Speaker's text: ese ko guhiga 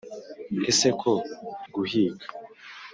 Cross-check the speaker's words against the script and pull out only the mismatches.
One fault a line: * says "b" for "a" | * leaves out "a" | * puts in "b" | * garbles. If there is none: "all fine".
all fine